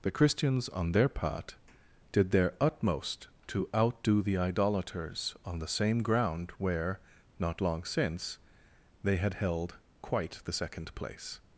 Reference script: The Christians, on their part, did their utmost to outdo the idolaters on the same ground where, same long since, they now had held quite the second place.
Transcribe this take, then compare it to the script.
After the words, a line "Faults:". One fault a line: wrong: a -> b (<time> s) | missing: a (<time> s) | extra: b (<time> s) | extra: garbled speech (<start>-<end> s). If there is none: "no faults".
The Christians, on their part, did their utmost to outdo the idolaters on the same ground where, not long since, they had held quite the second place.
Faults:
wrong: same -> not (7.4 s)
missing: now (9.2 s)